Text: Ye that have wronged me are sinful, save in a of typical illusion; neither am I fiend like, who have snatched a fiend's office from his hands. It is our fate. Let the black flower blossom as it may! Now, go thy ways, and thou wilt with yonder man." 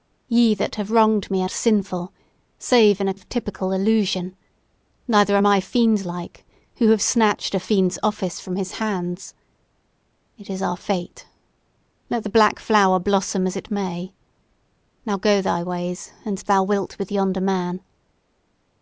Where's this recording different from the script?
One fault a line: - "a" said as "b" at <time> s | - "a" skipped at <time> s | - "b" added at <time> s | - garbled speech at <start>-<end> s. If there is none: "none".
none